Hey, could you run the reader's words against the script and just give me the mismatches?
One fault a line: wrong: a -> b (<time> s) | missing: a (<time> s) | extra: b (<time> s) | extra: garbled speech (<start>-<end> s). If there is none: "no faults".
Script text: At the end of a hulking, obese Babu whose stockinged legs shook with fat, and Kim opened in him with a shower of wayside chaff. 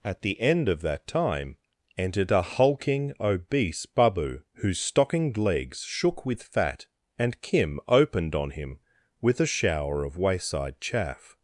extra: that time entered (0.8 s)
wrong: in -> on (8.3 s)